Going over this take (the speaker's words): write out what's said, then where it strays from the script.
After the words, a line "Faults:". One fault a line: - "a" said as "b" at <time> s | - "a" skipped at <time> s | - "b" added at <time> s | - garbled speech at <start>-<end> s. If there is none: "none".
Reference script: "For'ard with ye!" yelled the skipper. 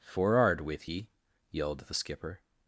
"For'ard with ye!" yelled the skipper.
Faults:
none